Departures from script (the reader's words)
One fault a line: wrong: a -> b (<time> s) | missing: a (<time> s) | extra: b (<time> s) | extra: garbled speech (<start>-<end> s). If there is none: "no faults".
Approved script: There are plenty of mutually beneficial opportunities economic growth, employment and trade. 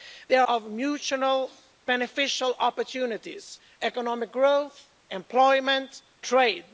missing: are plenty (0.4 s)
missing: and (6.0 s)